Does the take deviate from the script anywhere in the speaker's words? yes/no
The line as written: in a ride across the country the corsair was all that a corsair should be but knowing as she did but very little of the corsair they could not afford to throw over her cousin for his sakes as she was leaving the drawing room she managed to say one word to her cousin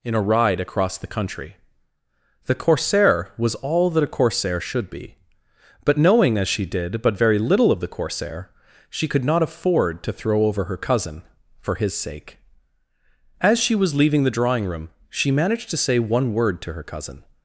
yes